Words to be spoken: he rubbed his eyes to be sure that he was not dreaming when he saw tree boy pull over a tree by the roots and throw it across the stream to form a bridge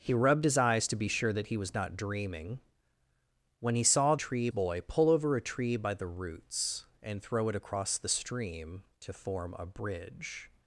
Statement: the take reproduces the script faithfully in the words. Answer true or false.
true